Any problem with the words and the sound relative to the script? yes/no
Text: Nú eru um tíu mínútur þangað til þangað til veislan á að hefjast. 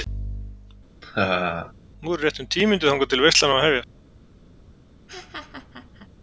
yes